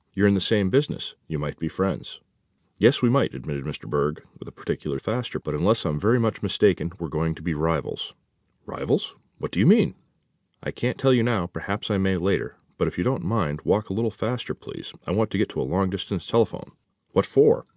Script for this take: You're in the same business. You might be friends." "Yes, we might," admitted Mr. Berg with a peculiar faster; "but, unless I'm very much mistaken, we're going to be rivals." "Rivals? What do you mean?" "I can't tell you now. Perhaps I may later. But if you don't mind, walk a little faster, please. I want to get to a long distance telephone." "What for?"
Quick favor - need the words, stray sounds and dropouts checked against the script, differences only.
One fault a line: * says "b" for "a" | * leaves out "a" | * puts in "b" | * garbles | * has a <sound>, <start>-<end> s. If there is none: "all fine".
all fine